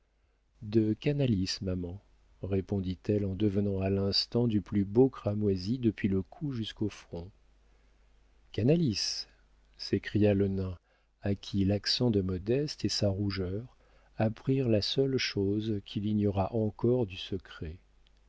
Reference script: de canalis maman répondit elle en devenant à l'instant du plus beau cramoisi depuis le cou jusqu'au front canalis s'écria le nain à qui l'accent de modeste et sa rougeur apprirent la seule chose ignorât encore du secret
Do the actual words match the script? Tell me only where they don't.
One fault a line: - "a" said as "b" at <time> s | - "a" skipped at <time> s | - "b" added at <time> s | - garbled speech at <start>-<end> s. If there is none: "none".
- "qu'il" added at 15.8 s